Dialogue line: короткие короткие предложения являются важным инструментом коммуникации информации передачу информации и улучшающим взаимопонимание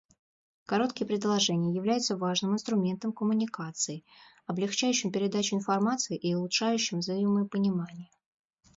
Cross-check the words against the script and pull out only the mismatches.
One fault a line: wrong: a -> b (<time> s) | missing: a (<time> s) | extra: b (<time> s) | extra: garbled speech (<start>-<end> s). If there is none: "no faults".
missing: короткие (1.1 s)
wrong: информации -> облегчающим (4.5 s)